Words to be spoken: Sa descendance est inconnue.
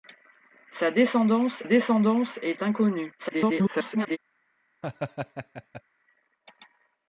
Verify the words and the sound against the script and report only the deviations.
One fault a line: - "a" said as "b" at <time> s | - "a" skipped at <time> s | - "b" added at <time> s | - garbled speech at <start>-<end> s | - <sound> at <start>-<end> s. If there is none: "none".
- "descendance" added at 1.6 s
- garbled speech at 3.2-4.2 s
- laugh at 4.8-5.8 s